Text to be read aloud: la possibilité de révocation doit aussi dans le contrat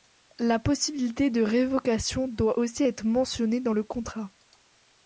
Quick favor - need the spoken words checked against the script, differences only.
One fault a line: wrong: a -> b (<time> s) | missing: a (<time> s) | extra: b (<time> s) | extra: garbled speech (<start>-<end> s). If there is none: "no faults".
extra: être mentionnée (2.8 s)